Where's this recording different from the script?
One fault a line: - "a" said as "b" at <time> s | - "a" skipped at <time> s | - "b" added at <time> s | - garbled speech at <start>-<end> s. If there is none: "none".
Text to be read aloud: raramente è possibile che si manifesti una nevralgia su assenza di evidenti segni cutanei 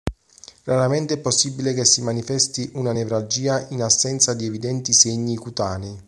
- "su" said as "in" at 3.7 s